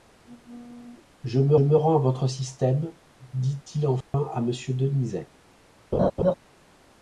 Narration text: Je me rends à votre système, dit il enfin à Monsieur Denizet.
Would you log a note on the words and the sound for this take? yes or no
yes